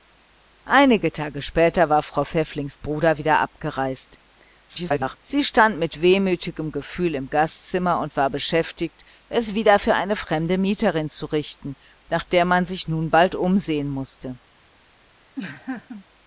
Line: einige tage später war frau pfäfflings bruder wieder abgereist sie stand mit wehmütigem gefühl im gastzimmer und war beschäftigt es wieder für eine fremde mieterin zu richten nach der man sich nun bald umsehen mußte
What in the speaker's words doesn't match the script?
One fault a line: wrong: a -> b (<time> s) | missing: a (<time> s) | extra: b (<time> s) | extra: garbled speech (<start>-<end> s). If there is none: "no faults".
extra: garbled speech (4.7-5.2 s)